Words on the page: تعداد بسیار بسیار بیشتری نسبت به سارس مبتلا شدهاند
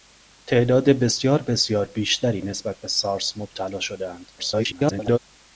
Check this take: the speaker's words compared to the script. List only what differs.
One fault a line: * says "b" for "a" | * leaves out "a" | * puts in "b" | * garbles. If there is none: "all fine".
* garbles